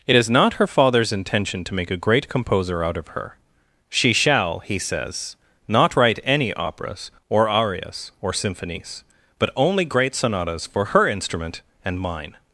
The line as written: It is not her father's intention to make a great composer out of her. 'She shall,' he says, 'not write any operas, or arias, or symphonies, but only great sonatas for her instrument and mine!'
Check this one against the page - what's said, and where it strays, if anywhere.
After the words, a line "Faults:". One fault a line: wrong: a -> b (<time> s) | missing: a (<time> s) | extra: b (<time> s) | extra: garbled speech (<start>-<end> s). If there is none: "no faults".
It is not her father's intention to make a great composer out of her. 'She shall,' he says, 'not write any operas, or arias, or symphonies, but only great sonatas for her instrument and mine!'
Faults:
no faults